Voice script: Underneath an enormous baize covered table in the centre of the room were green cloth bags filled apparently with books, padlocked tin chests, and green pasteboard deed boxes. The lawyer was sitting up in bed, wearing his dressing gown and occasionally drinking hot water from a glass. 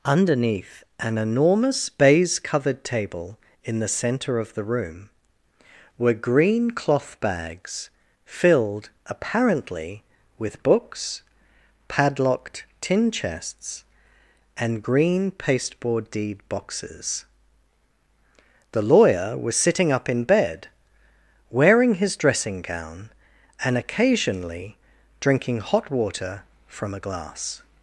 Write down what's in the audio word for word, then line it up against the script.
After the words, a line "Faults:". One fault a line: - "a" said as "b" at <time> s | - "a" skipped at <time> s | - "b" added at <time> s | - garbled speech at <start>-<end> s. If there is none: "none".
Underneath an enormous baize covered table in the centre of the room were green cloth bags filled apparently with books, padlocked tin chests, and green pasteboard deed boxes. The lawyer was sitting up in bed, wearing his dressing gown and occasionally drinking hot water from a glass.
Faults:
none